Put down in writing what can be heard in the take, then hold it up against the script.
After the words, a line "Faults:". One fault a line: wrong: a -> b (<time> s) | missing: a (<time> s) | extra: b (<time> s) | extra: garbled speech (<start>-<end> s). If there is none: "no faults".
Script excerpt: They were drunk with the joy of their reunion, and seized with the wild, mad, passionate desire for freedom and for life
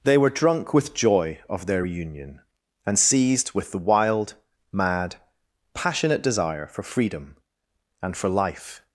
They were drunk with joy of their reunion, and seized with the wild, mad, passionate desire for freedom and for life
Faults:
missing: the (0.9 s)